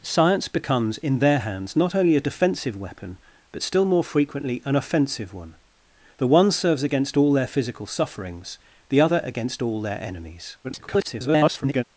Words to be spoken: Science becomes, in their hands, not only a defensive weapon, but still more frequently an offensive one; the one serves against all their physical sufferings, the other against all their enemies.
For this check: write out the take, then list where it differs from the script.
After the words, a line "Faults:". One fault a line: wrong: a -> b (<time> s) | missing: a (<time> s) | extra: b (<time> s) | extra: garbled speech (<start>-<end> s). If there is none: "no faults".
Science becomes, in their hands, not only a defensive weapon, but still more frequently an offensive one; the one serves against all their physical sufferings, the other against all their enemies. [garbled]
Faults:
extra: garbled speech (10.6-11.8 s)